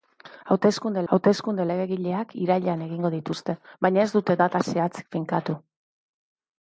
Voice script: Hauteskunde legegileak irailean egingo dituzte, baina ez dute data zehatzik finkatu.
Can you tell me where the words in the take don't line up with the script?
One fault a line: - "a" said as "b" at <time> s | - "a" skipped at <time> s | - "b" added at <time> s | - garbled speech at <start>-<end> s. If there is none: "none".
- "hauteskunde" added at 1.1 s